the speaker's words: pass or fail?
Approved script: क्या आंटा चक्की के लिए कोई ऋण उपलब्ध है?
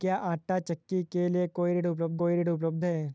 fail